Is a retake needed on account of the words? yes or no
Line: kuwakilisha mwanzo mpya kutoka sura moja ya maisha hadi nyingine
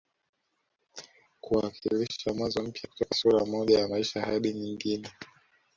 no